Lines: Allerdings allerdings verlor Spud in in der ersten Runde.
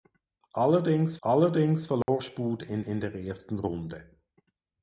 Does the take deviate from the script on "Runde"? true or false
false